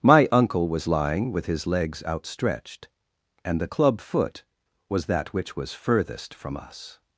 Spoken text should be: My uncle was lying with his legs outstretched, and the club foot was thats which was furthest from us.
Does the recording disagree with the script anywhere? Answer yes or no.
yes